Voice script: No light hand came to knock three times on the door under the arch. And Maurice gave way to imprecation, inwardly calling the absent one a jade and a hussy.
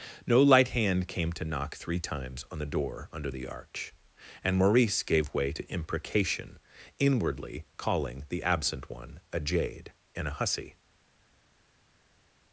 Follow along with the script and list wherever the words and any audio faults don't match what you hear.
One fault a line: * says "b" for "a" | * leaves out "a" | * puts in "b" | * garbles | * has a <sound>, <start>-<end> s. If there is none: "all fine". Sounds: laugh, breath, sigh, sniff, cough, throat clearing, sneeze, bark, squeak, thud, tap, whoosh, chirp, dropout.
all fine